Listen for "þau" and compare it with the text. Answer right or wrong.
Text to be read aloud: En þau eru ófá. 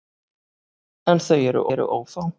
right